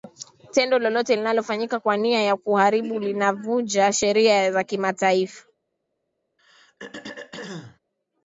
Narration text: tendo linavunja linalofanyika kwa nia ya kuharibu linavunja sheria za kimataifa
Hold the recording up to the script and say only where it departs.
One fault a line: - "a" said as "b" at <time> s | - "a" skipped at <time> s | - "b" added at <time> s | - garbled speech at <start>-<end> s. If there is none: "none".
- "linavunja" said as "lolote" at 0.8 s